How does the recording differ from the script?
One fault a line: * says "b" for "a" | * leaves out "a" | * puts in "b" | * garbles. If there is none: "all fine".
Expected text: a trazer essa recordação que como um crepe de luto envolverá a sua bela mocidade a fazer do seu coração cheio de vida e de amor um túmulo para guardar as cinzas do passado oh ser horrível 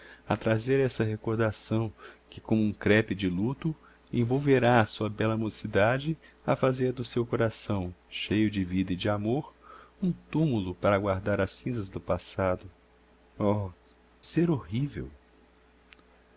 all fine